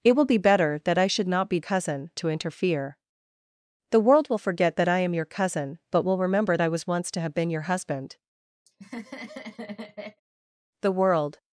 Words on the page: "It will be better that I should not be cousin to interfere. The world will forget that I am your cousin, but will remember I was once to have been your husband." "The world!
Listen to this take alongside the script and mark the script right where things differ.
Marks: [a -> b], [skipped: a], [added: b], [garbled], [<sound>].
"It will be better that I should not be cousin to interfere. The world will forget that I am your cousin, but will remember I was once to have been your husband." [laugh] "The world!